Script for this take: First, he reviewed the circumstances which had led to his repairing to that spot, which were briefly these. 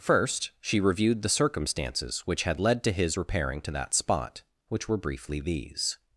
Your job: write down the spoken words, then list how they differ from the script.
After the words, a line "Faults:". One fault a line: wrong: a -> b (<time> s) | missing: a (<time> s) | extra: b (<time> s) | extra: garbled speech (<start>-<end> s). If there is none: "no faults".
First, she reviewed the circumstances which had led to his repairing to that spot, which were briefly these.
Faults:
wrong: he -> she (0.6 s)